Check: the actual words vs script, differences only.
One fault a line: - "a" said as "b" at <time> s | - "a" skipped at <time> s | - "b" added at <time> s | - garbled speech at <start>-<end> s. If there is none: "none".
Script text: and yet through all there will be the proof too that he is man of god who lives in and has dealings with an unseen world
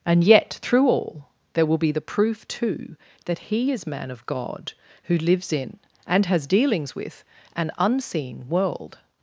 none